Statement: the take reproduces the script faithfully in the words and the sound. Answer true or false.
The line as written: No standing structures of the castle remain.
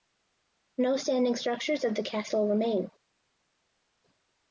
true